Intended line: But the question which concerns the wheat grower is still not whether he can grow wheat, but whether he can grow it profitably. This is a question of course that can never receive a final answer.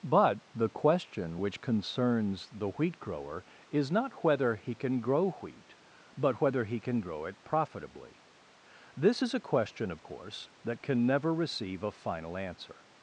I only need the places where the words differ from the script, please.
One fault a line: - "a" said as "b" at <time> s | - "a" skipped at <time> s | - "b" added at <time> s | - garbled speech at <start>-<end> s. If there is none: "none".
- "still" skipped at 3.9 s